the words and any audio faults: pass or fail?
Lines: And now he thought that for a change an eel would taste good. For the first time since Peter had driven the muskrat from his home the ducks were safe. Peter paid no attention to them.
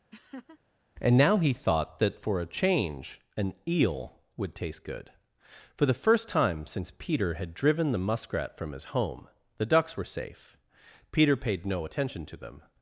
fail